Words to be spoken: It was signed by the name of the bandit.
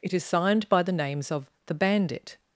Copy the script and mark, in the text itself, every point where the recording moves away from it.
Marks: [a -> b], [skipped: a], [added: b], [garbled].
It [was -> is] signed by the [name -> names] of the bandit.